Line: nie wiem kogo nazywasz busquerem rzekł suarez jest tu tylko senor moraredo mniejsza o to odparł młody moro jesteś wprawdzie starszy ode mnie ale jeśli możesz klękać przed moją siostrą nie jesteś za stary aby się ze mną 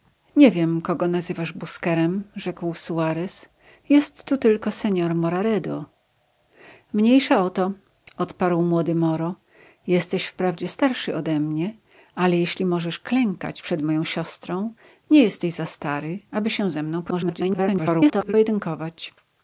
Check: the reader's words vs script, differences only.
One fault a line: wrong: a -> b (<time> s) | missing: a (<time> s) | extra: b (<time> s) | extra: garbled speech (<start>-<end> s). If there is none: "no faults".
extra: garbled speech (17.1-18.3 s)